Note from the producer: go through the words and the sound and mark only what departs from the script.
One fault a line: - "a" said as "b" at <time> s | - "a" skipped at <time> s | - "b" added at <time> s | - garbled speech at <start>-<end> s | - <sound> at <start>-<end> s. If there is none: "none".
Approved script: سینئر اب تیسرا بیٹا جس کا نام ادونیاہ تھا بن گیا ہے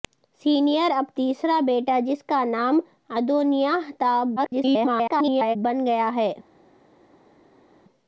- garbled speech at 4.4-5.6 s